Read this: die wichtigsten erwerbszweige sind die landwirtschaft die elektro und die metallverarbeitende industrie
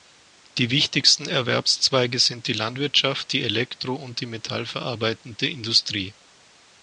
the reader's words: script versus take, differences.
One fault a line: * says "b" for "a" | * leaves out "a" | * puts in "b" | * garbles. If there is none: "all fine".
all fine